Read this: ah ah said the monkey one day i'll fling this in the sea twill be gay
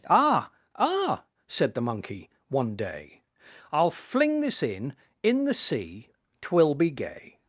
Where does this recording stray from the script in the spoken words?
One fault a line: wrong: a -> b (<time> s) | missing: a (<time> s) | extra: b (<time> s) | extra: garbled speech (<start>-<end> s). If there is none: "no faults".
extra: in (5.2 s)